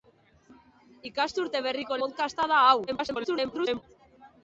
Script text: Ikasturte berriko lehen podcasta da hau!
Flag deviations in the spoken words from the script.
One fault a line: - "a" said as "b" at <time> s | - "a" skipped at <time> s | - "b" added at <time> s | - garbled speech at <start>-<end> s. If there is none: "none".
- "lehen" skipped at 2.0 s
- garbled speech at 2.9-3.8 s